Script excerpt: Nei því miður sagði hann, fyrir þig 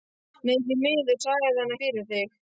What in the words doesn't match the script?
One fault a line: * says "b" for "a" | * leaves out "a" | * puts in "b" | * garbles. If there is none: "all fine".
all fine